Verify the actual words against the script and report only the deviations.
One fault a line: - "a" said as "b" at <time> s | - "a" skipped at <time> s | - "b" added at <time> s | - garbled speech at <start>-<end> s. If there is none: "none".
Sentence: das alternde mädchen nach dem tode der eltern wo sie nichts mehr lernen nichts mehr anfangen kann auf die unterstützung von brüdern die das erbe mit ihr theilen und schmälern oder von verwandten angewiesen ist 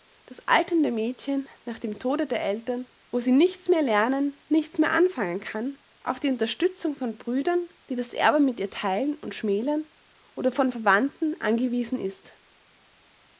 none